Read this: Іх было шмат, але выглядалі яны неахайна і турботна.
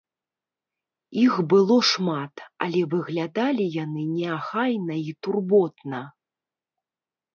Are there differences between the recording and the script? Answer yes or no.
no